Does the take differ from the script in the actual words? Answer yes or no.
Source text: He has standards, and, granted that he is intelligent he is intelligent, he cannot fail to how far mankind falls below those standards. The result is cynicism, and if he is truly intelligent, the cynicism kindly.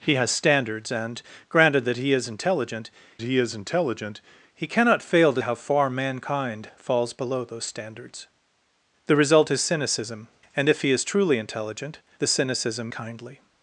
no